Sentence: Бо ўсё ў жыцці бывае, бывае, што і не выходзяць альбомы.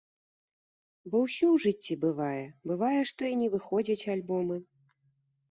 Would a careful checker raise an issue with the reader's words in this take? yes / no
no